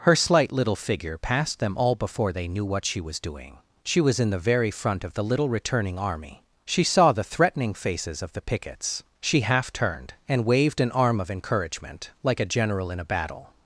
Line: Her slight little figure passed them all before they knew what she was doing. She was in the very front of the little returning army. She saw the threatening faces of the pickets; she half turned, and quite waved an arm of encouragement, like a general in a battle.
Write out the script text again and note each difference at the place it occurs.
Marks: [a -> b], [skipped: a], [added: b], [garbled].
Her slight little figure passed them all before they knew what she was doing. She was in the very front of the little returning army. She saw the threatening faces of the pickets; she half turned, and [skipped: quite] waved an arm of encouragement, like a general in a battle.